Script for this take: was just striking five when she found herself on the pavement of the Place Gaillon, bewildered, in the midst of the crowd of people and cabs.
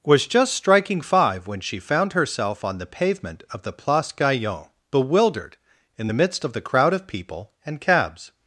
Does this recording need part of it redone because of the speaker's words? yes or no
no